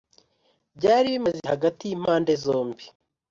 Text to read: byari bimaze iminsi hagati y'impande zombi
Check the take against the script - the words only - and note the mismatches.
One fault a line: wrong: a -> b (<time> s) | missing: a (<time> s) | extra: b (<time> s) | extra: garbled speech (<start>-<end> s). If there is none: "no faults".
missing: iminsi (1.4 s)